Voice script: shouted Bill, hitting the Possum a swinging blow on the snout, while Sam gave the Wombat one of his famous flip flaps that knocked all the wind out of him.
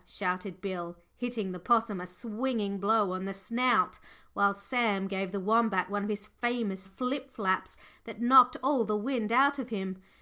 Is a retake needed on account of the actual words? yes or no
no